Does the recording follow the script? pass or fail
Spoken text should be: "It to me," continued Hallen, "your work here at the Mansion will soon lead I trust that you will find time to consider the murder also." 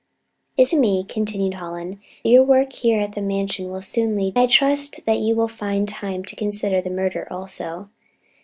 pass